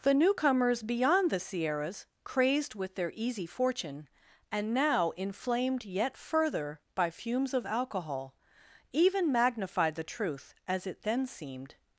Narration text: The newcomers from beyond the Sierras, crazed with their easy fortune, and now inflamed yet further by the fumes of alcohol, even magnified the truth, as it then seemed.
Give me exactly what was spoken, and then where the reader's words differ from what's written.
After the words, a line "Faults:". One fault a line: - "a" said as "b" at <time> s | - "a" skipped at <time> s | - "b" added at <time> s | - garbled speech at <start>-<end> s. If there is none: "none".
The newcomers beyond the Sierras, crazed with their easy fortune, and now inflamed yet further by fumes of alcohol, even magnified the truth, as it then seemed.
Faults:
- "from" skipped at 0.8 s
- "the" skipped at 7.1 s